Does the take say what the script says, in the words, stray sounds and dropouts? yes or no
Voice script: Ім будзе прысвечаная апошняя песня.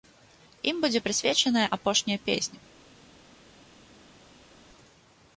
yes